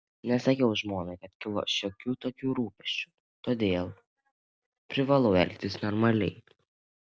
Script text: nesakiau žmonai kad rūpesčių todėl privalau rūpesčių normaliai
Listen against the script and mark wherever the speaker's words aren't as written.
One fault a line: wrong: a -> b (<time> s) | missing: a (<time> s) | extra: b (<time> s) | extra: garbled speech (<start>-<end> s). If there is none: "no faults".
extra: kilo šiokių tokių (1.4 s)
wrong: rūpesčių -> elgtis (5.4 s)